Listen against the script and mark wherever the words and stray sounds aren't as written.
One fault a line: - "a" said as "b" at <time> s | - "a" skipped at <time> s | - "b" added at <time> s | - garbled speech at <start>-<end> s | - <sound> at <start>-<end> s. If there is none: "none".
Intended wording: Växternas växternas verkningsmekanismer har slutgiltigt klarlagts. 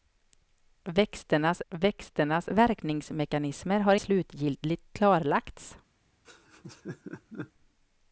- laugh at 6.2-7.5 s